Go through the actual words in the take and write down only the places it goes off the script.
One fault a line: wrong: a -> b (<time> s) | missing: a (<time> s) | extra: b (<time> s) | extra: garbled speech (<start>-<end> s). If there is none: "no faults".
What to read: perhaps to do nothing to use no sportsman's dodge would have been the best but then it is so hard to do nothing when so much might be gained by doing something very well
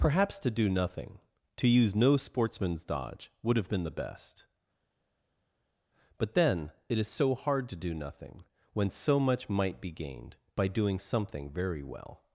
no faults